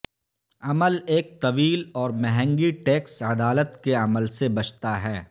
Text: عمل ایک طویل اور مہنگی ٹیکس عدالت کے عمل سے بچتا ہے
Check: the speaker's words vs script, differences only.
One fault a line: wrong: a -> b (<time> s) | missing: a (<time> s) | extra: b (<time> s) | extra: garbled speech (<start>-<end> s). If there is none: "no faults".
no faults